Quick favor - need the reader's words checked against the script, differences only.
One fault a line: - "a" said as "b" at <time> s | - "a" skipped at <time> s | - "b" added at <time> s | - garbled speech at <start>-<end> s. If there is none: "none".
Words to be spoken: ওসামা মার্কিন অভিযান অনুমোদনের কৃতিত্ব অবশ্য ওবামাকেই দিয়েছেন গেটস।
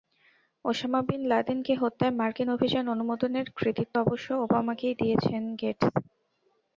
- "বিন লাদেনকে হত্যায়" added at 1.1 s